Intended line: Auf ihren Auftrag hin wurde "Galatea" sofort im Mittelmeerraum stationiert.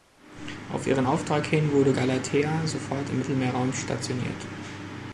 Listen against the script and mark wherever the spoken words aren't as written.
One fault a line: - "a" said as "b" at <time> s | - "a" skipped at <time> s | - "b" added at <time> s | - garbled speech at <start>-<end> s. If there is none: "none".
none